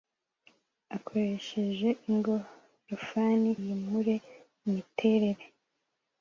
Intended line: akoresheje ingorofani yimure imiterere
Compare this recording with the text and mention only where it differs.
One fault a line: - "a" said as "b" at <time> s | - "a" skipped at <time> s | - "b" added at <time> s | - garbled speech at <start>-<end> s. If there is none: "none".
none